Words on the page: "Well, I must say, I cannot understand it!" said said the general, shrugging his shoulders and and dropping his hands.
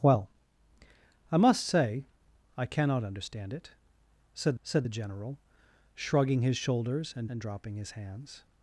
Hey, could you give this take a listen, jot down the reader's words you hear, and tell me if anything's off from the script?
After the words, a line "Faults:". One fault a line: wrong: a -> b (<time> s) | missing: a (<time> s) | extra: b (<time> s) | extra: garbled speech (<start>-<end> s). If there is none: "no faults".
"Well, I must say, I cannot understand it!" said said the general, shrugging his shoulders and and dropping his hands.
Faults:
no faults